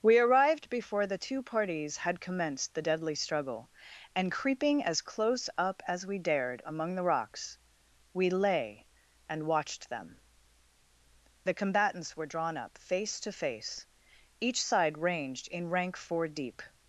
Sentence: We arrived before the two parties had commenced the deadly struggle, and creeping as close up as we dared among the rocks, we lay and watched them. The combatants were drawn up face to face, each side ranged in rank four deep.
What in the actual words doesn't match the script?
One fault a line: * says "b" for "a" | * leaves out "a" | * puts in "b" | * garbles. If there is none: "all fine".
all fine